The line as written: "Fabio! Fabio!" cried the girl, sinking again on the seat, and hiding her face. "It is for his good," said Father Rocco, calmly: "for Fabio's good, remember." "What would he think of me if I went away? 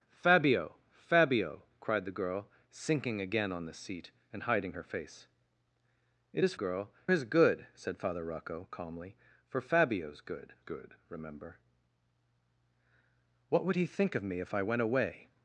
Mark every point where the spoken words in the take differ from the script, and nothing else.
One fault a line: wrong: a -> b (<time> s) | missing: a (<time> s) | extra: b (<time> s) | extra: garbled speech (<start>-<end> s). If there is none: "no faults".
wrong: for -> girl (6.5 s)
extra: good (10.6 s)